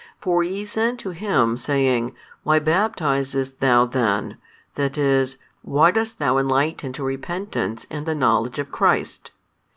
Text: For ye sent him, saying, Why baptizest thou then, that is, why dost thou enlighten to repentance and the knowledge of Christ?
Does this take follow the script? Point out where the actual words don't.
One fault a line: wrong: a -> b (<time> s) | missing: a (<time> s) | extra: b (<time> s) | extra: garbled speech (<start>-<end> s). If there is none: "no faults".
extra: to (1.0 s)